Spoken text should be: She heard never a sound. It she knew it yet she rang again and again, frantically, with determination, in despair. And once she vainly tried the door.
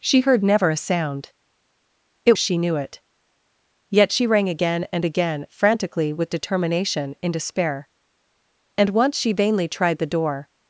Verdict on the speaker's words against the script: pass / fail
pass